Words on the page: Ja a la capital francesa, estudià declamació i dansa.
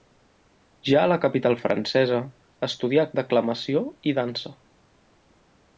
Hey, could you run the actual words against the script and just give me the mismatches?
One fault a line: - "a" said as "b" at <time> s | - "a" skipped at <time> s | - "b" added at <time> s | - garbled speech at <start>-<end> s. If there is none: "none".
none